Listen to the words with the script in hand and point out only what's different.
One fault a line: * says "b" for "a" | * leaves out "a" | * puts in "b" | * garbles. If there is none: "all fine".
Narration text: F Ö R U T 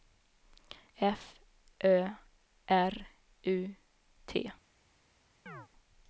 all fine